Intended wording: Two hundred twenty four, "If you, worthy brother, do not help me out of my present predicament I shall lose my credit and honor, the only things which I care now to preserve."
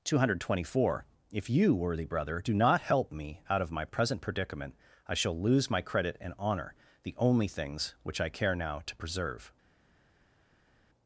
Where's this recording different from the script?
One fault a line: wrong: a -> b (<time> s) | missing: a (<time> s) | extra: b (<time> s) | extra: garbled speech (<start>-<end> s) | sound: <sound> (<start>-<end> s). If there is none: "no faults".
no faults